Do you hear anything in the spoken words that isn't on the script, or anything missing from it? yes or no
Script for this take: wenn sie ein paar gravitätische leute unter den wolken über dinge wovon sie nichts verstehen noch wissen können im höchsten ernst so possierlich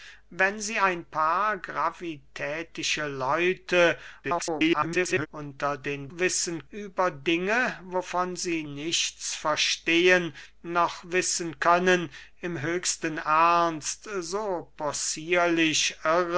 yes